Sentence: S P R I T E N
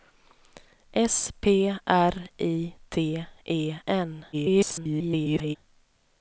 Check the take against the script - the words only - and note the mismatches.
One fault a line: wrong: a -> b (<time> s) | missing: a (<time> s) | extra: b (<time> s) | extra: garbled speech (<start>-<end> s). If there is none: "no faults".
extra: garbled speech (4.3-5.6 s)